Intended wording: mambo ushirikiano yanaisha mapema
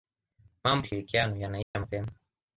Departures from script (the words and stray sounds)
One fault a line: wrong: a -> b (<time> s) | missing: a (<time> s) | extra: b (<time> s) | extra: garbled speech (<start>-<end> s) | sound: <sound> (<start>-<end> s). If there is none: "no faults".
sound: dropout (1.6-1.8 s)